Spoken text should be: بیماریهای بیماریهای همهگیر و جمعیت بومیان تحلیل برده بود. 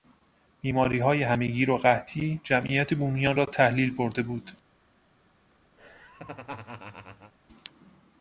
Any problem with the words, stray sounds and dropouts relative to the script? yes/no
yes